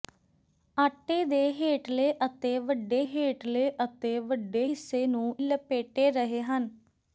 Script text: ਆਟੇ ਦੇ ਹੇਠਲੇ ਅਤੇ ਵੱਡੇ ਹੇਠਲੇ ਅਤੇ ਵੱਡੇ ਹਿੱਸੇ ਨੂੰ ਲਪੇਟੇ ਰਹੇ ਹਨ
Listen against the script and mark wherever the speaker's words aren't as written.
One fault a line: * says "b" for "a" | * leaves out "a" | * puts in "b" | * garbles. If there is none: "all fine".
all fine